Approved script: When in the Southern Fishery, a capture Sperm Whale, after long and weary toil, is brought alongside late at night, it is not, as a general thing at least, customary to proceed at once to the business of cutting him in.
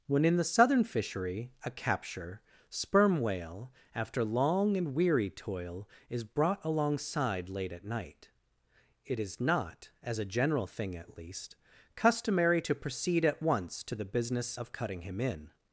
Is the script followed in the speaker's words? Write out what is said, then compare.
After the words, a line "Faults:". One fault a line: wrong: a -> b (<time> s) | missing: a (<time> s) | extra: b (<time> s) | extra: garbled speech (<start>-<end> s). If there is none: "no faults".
When in the Southern Fishery, a capture Sperm Whale, after long and weary toil, is brought alongside late at night, it is not, as a general thing at least, customary to proceed at once to the business of cutting him in.
Faults:
no faults